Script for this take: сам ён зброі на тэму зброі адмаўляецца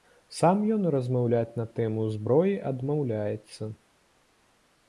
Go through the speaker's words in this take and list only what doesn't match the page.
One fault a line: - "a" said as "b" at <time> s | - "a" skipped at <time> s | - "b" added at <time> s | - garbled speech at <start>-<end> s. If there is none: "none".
- "зброі" said as "размаўляць" at 0.9 s